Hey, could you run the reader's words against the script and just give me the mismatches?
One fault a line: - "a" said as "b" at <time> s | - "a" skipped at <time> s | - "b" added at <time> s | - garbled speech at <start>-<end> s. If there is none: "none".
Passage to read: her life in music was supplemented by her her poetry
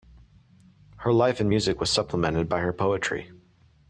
- "her" skipped at 2.7 s